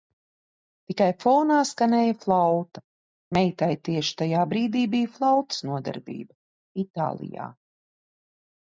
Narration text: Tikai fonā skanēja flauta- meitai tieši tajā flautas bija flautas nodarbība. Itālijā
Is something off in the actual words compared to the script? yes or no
yes